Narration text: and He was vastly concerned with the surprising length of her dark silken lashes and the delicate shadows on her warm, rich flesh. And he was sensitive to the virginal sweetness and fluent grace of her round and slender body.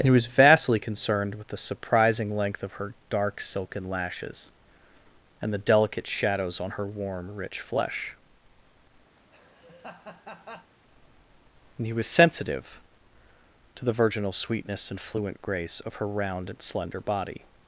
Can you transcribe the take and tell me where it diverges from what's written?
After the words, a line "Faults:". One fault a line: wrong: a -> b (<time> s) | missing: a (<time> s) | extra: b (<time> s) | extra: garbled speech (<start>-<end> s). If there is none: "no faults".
and He was vastly concerned with the surprising length of her dark silken lashes and the delicate shadows on her warm, rich flesh. And he was sensitive to the virginal sweetness and fluent grace of her round and slender body.
Faults:
no faults